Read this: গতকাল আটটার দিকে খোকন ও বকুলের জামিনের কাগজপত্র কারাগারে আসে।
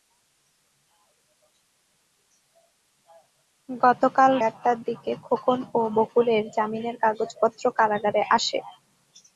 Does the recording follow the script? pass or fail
pass